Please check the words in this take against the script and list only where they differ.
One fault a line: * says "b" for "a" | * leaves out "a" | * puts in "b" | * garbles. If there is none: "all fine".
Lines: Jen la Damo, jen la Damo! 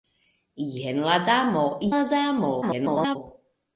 * leaves out "jen"
* garbles